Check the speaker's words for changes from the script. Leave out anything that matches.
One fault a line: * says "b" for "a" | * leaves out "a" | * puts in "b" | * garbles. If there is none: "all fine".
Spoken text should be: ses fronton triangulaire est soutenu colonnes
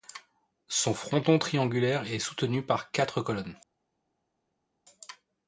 * says "son" for "ses"
* puts in "par quatre"